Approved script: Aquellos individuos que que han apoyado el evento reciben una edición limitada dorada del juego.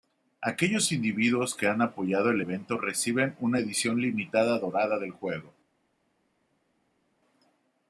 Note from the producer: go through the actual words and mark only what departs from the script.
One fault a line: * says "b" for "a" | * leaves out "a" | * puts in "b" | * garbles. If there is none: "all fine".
* leaves out "que"